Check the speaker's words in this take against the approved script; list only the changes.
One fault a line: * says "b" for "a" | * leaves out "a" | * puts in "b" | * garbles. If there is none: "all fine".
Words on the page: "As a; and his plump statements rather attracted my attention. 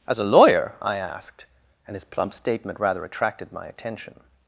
* puts in "lawyer I asked"
* says "statement" for "statements"